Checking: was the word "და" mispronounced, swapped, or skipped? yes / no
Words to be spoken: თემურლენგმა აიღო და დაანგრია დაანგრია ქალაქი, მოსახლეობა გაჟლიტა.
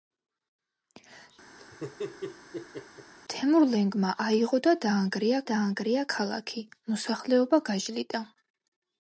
no